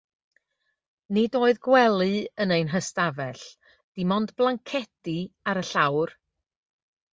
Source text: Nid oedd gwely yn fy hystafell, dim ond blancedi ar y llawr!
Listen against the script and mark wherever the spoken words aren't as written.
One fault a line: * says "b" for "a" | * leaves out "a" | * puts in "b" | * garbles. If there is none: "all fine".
* says "ein" for "fy"